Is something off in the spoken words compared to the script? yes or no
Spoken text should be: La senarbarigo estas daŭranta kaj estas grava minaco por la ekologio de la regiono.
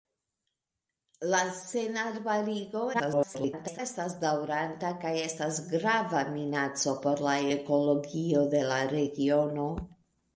yes